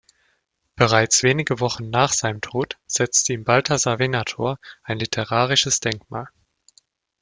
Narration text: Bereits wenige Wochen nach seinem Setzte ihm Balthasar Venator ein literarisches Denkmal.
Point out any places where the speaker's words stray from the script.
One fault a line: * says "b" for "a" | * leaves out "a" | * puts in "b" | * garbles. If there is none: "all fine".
* puts in "Tod"